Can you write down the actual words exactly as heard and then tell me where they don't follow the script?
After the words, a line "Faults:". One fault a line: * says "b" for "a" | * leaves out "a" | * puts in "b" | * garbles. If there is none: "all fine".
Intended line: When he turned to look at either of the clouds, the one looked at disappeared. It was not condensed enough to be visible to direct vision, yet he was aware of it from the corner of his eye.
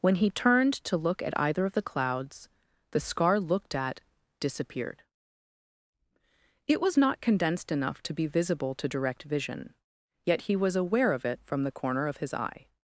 When he turned to look at either of the clouds, the scar looked at disappeared. It was not condensed enough to be visible to direct vision, yet he was aware of it from the corner of his eye.
Faults:
* says "scar" for "one"